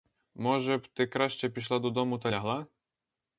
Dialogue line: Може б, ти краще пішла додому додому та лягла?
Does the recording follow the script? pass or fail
fail